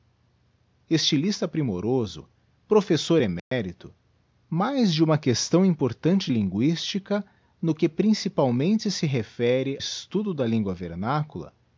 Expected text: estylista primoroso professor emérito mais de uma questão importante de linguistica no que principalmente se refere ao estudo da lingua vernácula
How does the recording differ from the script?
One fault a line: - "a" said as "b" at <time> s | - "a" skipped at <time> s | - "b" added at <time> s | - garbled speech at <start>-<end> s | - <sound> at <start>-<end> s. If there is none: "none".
- dropout at 3.4-3.5 s
- "de" skipped at 6.3 s
- "ao" skipped at 9.8 s